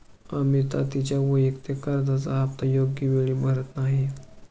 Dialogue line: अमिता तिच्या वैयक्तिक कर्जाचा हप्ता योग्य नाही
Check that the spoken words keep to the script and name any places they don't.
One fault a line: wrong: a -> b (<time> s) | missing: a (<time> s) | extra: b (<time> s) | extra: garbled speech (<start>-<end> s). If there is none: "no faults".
extra: वेळी भरत (3.1 s)